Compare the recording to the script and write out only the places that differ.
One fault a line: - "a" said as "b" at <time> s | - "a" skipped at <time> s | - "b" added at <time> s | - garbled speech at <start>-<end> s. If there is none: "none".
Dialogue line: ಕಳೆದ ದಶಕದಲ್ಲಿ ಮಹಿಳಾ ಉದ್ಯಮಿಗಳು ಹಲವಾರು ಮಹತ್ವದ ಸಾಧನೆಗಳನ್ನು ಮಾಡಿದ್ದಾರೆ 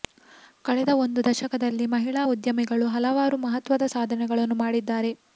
- "ಒಂದು" added at 1.0 s